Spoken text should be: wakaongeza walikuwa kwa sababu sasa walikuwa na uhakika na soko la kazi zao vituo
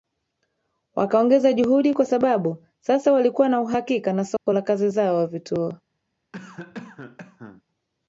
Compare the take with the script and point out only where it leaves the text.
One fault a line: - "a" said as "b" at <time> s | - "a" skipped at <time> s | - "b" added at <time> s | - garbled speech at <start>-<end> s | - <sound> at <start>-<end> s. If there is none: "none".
- "walikuwa" said as "juhudi" at 1.5 s
- dropout at 4.4-4.5 s
- cough at 6.3-7.6 s